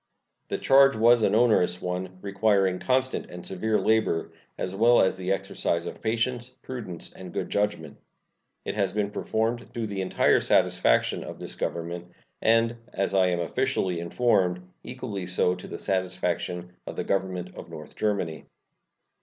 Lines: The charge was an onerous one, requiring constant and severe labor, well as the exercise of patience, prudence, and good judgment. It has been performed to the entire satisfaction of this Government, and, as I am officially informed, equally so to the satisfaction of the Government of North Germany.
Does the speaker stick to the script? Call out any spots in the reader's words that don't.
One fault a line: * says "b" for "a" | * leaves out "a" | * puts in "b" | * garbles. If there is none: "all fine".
* puts in "as"